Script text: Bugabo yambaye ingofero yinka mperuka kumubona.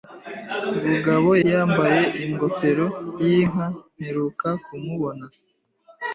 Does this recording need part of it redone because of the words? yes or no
no